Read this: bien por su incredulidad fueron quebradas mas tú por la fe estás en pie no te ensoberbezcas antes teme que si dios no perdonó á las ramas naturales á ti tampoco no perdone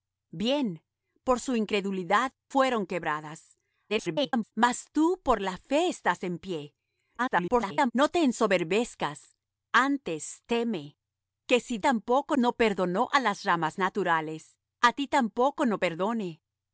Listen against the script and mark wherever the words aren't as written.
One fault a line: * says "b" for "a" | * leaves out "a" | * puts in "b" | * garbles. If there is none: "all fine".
* garbles
* garbles
* says "tampoco" for "dios"